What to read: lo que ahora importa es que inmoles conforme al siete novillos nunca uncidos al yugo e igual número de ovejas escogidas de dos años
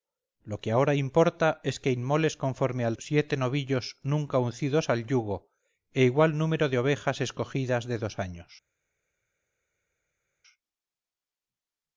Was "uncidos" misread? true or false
false